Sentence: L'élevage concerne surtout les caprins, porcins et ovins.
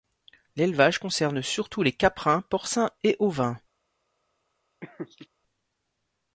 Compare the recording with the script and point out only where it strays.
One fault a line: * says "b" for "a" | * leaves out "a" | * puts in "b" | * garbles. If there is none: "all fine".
all fine